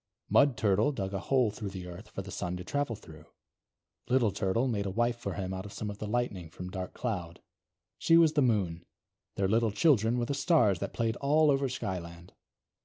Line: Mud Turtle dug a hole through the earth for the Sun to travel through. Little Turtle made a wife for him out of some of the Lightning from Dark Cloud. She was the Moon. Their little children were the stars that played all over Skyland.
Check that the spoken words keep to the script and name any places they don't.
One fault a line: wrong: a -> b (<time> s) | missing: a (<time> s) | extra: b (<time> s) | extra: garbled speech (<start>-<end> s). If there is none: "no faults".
no faults